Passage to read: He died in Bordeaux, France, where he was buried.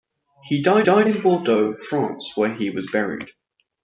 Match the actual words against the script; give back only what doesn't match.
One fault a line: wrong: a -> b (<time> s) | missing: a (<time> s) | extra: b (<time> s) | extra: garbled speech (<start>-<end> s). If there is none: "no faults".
extra: died (0.8 s)